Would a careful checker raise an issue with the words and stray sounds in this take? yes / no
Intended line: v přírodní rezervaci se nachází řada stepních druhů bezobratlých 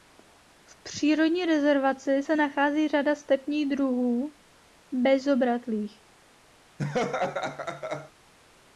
yes